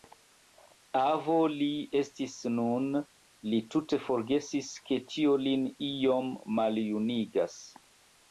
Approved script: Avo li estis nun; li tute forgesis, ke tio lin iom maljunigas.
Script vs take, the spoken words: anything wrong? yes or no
no